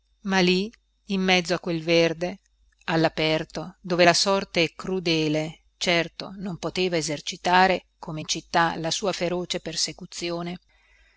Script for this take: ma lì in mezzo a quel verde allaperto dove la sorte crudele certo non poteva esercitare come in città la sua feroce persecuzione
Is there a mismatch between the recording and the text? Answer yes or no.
no